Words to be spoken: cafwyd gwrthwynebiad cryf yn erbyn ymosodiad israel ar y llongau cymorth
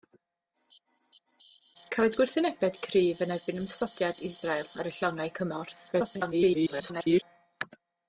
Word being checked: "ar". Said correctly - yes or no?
yes